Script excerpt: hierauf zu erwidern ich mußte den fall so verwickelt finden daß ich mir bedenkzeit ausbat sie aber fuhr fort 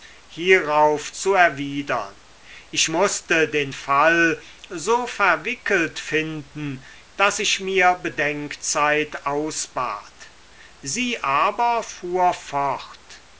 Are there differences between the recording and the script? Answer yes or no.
no